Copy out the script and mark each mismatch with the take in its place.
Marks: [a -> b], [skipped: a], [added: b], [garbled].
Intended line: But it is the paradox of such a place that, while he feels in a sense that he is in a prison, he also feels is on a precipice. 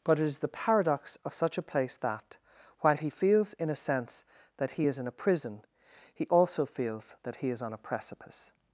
But it is the paradox of such a place that, while he feels in a sense that he is in a prison, he also feels [added: that he] is on a precipice.